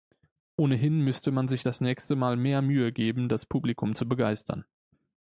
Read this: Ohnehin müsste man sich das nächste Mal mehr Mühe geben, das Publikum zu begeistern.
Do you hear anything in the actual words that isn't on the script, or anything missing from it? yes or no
no